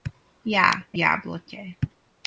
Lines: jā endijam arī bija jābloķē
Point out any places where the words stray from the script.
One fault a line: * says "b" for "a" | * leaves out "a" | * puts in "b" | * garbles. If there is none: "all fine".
* leaves out "endijam arī bija"